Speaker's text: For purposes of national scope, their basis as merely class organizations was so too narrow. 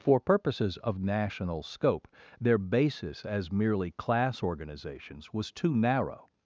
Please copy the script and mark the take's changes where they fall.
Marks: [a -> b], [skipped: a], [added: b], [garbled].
For purposes of national scope, their basis as merely class organizations was [skipped: so] too narrow.